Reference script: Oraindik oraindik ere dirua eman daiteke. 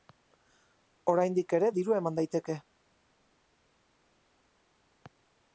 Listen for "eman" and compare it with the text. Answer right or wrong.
right